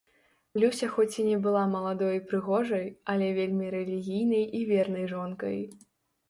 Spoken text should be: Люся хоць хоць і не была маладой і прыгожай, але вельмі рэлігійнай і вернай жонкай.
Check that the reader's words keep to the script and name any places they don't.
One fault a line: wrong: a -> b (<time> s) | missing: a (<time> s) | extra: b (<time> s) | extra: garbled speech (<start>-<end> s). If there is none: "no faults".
missing: хоць (1.2 s)